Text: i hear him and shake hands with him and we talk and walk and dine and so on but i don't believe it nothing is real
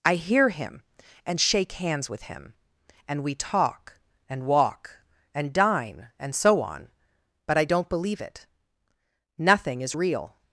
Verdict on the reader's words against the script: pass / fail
pass